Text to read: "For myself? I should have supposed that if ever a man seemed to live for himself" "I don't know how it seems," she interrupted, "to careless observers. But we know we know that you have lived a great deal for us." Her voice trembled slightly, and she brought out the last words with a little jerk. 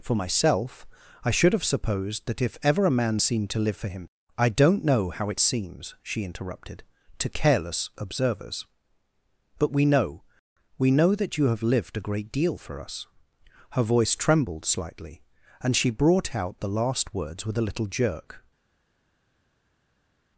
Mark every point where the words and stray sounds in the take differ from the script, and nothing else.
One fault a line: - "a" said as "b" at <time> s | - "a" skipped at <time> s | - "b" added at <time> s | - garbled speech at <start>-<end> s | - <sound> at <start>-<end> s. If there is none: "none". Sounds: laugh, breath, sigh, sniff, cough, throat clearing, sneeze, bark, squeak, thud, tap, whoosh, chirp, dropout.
- "himself" said as "him" at 3.9 s